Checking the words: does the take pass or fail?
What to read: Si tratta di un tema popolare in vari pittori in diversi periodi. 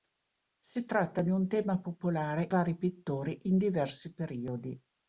fail